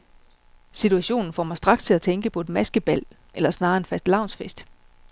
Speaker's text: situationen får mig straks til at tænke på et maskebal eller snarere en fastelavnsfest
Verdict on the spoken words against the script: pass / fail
pass